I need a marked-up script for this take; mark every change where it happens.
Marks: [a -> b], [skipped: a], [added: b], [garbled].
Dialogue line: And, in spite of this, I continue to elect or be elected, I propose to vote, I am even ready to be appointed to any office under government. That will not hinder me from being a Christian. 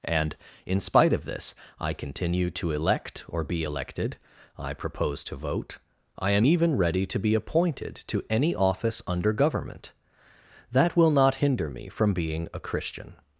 And, in spite of this, I continue to elect or be elected, I propose to vote, I am even ready to be appointed to any office under government. That will not hinder me from being a Christian.